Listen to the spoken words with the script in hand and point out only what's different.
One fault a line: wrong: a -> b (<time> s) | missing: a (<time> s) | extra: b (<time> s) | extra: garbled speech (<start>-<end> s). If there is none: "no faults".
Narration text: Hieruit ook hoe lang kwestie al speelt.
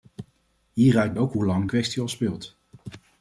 no faults